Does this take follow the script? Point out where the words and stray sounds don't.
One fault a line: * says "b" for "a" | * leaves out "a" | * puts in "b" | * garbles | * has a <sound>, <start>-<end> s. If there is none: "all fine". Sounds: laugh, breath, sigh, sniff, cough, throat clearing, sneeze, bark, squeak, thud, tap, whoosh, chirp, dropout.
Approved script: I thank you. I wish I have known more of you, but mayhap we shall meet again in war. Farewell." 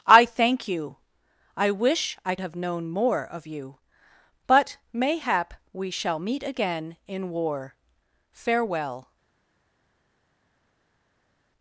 all fine